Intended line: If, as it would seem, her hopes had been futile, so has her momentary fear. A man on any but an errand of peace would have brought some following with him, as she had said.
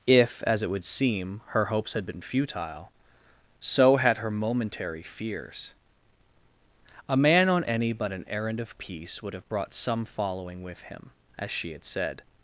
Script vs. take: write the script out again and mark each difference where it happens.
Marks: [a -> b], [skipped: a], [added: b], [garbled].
If, as it would seem, her hopes had been futile, so [has -> had] her momentary [fear. -> fears] A man on any but an errand of peace would have brought some following with him, as she had said.